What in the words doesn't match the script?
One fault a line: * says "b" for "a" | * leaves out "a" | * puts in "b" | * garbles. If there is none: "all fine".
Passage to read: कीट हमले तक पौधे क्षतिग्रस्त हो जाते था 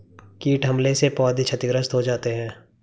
* says "से" for "तक"
* says "है" for "था"